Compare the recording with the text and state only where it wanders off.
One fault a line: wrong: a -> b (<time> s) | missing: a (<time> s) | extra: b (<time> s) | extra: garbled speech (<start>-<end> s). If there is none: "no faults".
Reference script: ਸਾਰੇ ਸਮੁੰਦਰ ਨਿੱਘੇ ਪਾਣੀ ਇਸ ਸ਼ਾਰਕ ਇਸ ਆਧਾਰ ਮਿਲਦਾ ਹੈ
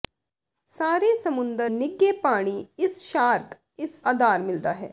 no faults